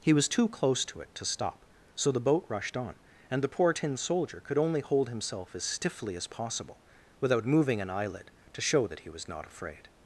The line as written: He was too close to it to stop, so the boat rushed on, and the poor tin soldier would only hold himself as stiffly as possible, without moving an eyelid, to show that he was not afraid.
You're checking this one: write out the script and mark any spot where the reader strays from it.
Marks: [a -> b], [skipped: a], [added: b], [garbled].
He was too close to it to stop, so the boat rushed on, and the poor tin soldier [would -> could] only hold himself as stiffly as possible, without moving an eyelid, to show that he was not afraid.